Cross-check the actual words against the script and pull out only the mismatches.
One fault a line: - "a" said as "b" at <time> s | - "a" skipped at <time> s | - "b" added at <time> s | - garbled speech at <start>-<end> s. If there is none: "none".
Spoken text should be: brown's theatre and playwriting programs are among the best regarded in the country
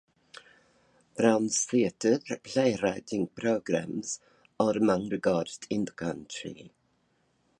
- "and" skipped at 2.2 s
- "the best" skipped at 5.1 s